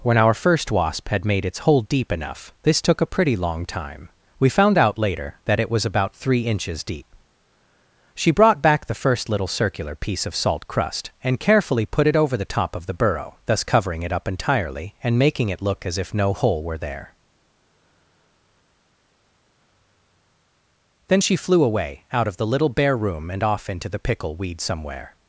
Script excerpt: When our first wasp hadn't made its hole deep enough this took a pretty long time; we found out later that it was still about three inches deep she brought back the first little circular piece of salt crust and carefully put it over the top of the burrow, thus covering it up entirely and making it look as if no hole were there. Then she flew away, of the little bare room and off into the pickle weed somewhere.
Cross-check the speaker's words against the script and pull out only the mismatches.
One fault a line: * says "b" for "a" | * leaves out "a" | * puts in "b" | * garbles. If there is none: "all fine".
* says "had" for "hadn't"
* leaves out "still"
* puts in "out"